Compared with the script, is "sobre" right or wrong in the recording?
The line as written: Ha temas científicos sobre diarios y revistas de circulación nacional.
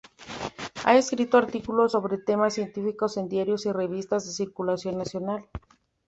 wrong